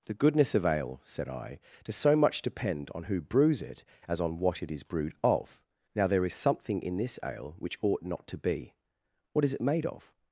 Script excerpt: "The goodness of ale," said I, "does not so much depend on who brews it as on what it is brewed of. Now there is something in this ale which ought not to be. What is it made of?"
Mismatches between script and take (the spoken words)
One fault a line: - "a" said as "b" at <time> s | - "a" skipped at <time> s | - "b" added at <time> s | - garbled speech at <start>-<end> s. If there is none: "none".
- "not" skipped at 2.0 s